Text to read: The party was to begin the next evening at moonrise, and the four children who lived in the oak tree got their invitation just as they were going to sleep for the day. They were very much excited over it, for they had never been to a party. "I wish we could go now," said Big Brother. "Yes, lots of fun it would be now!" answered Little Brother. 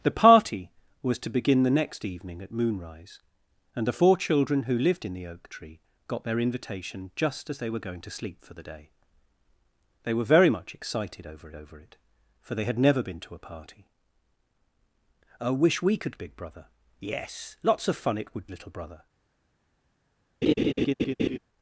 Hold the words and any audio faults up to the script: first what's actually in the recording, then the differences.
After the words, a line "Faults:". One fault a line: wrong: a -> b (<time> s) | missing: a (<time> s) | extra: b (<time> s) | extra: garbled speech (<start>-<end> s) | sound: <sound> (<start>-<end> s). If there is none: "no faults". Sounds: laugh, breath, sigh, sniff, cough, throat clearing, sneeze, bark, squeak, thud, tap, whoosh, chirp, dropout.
The party was to begin the next evening at moonrise, and the four children who lived in the oak tree got their invitation just as they were going to sleep for the day. They were very much excited over over it, for they had never been to a party. "I wish we could Big Brother. "Yes, lots of fun it would Little Brother.
Faults:
extra: over (11.6 s)
missing: go now said (16.2 s)
missing: be now answered (18.5 s)
sound: laugh (20.4-21.4 s)